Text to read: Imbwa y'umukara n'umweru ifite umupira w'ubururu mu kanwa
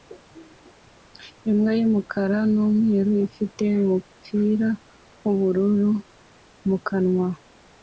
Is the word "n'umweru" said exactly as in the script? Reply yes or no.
yes